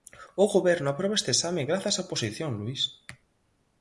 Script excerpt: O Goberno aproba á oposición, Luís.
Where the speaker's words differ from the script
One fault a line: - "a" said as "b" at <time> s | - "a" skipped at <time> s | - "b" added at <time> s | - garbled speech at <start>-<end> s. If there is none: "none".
- "este exame grazas" added at 1.2 s